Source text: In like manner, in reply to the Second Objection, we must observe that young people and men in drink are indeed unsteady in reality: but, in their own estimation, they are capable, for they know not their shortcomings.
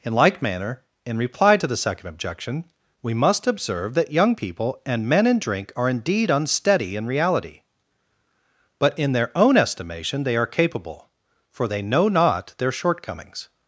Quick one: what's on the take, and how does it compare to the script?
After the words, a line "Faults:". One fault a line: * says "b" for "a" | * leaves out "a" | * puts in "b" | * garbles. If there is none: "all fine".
In like manner, in reply to the Second Objection, we must observe that young people and men in drink are indeed unsteady in reality: but, in their own estimation, they are capable, for they know not their shortcomings.
Faults:
all fine